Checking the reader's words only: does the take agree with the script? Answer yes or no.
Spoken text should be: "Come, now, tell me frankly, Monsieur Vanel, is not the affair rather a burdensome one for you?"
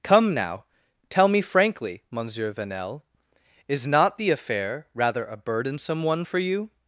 yes